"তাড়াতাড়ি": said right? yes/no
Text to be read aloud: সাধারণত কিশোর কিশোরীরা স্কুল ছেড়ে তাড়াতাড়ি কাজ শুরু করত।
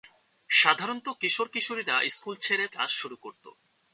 no